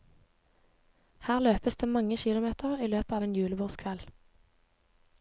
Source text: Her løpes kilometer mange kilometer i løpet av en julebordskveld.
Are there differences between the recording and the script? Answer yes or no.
yes